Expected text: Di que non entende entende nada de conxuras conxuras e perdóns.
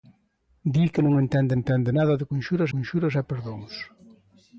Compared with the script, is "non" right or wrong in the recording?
right